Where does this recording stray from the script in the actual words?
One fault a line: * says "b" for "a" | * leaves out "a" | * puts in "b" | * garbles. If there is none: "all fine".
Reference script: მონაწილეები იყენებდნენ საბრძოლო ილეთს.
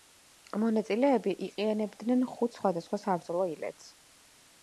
* puts in "ხუთ სხვადასხვა"